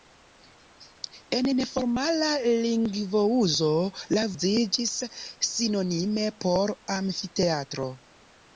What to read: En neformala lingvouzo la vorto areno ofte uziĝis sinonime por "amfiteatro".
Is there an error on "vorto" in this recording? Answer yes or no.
yes